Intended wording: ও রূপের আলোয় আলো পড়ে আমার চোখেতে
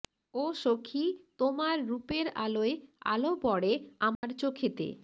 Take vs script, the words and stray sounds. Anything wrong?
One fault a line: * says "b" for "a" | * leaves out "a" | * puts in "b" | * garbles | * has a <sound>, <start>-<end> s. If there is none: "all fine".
* puts in "সখী তোমার"
* has a dropout, 4.2-4.2 s